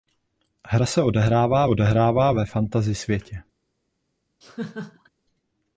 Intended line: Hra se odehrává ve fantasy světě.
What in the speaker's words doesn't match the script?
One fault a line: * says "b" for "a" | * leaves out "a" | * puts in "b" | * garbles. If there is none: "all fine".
* puts in "odehrává"